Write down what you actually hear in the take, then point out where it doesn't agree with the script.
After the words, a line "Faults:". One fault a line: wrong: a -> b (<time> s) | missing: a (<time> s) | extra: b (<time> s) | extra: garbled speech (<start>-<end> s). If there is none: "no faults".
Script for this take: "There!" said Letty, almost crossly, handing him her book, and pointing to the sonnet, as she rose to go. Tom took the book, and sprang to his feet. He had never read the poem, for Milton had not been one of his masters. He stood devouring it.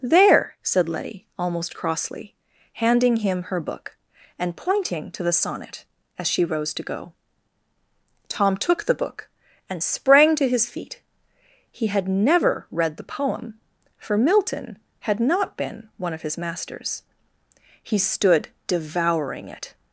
"There!" said Letty, almost crossly, handing him her book, and pointing to the sonnet, as she rose to go. Tom took the book, and sprang to his feet. He had never read the poem, for Milton had not been one of his masters. He stood devouring it.
Faults:
no faults